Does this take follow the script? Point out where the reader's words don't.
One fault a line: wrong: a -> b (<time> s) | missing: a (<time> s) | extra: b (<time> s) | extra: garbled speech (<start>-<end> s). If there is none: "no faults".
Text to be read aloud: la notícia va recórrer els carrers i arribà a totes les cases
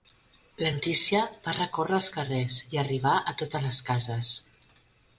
no faults